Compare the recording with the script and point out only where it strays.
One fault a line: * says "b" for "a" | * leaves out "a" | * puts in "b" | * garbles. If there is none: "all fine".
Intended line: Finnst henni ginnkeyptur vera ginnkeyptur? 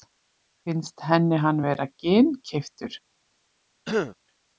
* says "hann" for "ginnkeyptur"